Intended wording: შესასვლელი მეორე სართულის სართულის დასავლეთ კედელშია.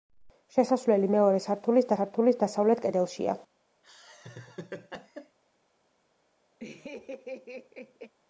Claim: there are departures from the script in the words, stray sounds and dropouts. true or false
true